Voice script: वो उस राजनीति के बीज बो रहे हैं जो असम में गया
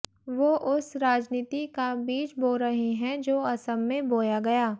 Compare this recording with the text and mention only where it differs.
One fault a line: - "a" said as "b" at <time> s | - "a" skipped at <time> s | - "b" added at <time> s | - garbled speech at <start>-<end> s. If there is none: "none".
- "के" said as "का" at 1.7 s
- "बोया" added at 4.1 s